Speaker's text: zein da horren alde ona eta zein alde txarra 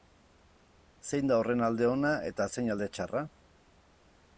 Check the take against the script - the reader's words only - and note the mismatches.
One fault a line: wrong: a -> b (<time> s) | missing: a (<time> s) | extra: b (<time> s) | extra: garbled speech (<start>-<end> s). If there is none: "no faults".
no faults